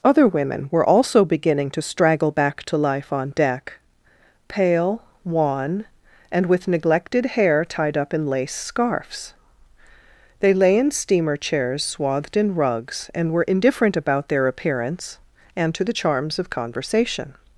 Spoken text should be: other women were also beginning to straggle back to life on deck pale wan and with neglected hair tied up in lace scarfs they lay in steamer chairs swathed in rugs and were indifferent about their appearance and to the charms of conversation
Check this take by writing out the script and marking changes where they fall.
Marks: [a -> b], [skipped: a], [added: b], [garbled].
other women were also beginning to straggle back to life on deck pale wan and with neglected hair tied up in lace scarfs they lay in steamer chairs swathed in rugs and were indifferent about their appearance and to the charms of conversation